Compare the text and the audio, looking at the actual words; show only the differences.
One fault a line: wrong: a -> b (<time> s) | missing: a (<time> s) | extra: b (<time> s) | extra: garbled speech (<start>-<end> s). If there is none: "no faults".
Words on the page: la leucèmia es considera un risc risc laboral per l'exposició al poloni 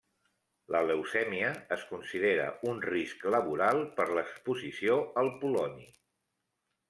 missing: risc (3.3 s)